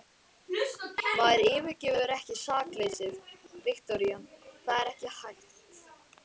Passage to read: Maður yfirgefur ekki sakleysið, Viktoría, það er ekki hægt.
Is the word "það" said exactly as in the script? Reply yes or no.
yes